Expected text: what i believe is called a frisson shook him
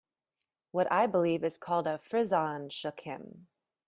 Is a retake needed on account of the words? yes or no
no